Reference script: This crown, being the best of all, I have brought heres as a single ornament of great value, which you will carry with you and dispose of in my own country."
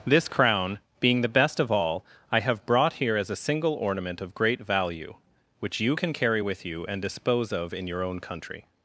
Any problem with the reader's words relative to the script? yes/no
yes